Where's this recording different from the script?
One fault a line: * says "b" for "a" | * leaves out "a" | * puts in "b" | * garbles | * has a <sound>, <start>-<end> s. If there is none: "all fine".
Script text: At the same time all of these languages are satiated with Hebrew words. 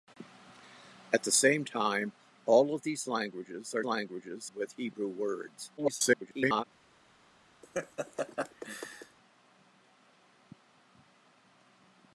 * says "languages" for "satiated"
* garbles
* has a laugh, 7.6-9.2 s